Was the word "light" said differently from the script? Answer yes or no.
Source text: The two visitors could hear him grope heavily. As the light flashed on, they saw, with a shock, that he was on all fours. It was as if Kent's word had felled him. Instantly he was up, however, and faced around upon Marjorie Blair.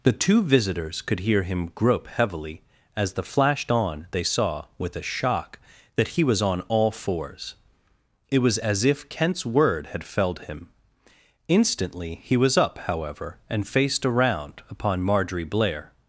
yes